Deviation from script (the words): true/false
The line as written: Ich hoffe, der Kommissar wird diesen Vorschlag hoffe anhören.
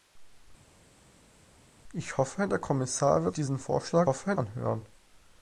false